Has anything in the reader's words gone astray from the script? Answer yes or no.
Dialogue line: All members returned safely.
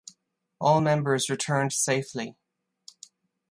no